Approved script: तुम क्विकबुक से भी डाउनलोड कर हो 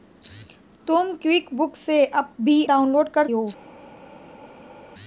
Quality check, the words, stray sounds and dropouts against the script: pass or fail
pass